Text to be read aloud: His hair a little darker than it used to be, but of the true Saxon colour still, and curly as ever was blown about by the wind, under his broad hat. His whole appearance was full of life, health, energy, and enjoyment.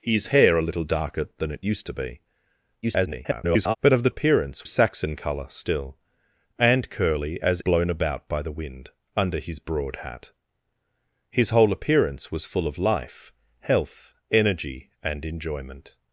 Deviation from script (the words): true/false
true